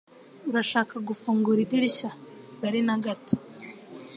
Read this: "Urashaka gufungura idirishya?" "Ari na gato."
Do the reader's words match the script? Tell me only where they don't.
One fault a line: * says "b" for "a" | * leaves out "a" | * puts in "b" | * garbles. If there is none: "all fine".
all fine